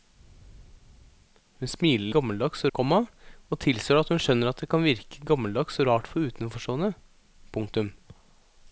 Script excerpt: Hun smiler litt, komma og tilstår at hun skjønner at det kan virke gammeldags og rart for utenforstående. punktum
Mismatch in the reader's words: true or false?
true